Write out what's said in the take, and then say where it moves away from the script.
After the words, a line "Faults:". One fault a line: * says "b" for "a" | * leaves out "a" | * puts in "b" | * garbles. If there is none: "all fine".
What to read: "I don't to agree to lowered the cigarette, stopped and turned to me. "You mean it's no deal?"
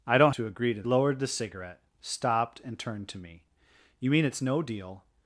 "I don't to agree to lowered the cigarette, stopped and turned to me. "You mean it's no deal?"
Faults:
all fine